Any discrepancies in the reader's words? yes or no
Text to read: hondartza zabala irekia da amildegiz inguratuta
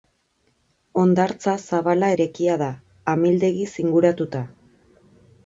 no